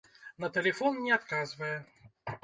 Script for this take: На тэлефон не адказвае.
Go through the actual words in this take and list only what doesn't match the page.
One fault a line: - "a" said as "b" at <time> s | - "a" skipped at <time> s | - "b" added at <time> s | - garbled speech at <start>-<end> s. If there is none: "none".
none